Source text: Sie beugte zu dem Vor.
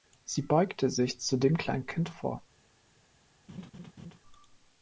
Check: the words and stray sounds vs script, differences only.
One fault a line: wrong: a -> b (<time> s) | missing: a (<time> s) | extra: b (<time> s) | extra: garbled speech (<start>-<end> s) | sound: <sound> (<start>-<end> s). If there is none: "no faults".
extra: sich (0.9 s)
extra: Kleinkind (1.6 s)
sound: laugh (3.5-4.2 s)